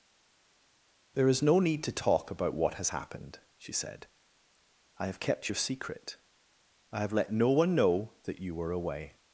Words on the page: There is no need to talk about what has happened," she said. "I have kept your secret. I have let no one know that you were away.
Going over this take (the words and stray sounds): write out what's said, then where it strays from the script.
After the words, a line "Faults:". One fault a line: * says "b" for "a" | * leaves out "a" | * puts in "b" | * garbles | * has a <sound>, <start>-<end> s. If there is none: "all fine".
There is no need to talk about what has happened," she said. "I have kept your secret. I have let no one know that you were away.
Faults:
all fine